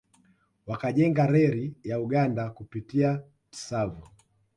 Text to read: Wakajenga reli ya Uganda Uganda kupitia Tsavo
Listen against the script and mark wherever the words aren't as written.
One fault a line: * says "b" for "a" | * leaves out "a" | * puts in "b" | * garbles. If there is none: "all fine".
* leaves out "Uganda"